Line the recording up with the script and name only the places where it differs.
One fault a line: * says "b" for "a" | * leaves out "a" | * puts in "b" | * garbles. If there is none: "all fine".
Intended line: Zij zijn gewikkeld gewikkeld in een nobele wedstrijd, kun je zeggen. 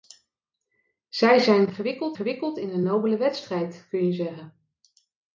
all fine